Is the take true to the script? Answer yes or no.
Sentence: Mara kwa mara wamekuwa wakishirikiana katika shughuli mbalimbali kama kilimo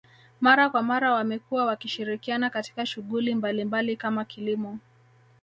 yes